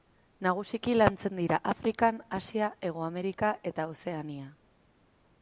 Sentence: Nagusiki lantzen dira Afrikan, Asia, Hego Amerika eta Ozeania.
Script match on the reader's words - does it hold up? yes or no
yes